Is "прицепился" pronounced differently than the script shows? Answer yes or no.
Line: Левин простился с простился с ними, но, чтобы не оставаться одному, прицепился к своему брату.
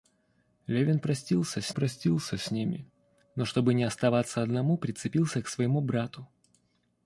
no